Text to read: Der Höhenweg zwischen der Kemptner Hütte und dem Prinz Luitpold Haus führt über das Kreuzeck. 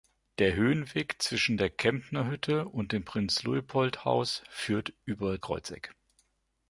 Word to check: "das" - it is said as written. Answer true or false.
false